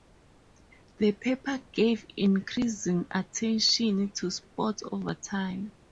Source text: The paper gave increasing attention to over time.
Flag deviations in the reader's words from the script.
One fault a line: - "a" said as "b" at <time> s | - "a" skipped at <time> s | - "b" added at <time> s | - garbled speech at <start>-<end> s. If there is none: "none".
- "sports" added at 4.3 s